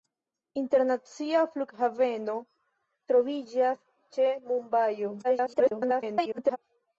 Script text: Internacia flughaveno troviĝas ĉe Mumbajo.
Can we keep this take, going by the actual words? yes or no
no